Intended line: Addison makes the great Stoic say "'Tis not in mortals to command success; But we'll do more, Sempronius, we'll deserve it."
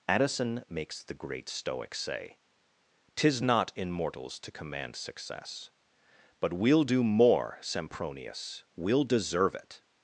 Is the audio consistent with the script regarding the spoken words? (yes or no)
yes